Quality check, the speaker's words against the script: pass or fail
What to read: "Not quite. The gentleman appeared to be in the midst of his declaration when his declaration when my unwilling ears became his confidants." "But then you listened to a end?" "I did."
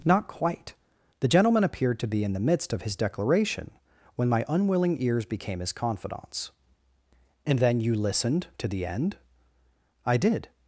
fail